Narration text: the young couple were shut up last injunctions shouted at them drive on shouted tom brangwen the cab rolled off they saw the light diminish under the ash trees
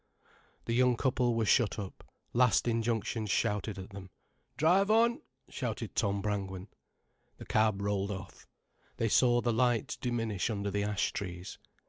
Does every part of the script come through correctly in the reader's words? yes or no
yes